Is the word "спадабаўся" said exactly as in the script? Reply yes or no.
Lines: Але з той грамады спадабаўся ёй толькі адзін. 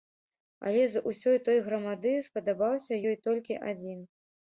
yes